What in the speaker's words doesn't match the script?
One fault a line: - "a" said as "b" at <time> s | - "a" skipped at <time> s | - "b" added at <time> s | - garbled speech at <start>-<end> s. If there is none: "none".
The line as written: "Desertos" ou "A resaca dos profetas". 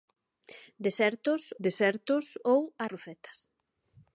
- "desertos" added at 1.6 s
- "resaca dos" skipped at 2.9 s